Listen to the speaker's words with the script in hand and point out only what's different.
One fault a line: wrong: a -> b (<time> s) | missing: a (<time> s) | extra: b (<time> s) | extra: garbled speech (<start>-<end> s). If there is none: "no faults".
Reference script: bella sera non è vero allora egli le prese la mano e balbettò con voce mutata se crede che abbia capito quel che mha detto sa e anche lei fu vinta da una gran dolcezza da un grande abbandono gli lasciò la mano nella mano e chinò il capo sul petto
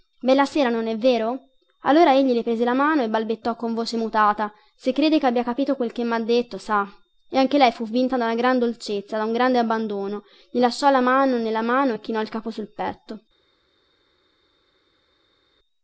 no faults